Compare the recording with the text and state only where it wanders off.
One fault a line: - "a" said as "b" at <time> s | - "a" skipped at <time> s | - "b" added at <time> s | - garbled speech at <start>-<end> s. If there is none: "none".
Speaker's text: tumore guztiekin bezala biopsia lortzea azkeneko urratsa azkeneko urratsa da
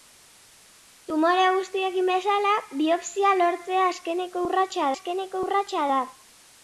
none